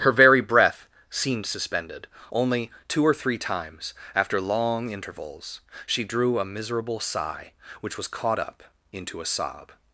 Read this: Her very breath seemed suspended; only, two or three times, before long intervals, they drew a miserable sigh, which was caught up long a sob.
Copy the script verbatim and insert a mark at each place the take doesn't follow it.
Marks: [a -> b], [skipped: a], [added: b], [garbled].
Her very breath seemed suspended; only, two or three times, [before -> after] long intervals, [they -> she] drew a miserable sigh, which was caught up [long -> into] a sob.